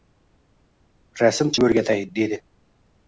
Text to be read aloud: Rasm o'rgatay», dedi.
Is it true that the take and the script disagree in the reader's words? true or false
false